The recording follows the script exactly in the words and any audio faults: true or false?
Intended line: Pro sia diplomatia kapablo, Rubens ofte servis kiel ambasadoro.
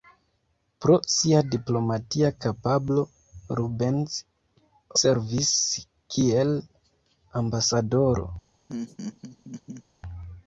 false